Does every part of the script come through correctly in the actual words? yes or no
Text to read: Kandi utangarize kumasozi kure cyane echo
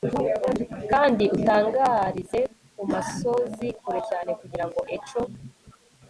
no